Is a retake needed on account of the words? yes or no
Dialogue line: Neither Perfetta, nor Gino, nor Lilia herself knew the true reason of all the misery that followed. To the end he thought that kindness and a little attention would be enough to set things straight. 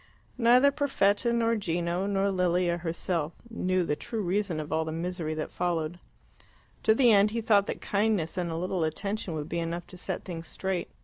no